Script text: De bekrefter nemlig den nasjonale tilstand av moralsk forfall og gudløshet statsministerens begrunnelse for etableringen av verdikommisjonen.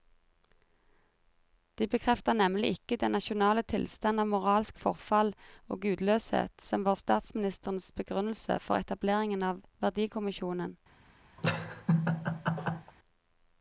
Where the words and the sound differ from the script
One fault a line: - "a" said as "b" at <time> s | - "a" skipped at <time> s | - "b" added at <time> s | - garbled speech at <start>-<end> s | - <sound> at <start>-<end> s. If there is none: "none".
- "ikke" added at 2.7 s
- "som var" added at 6.7 s
- laugh at 11.4-12.9 s